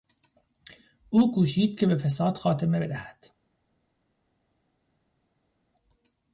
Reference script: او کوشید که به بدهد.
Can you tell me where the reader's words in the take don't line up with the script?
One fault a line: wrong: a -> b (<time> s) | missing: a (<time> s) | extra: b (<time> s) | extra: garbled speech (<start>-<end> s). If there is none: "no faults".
extra: فساد خاتمه (2.0 s)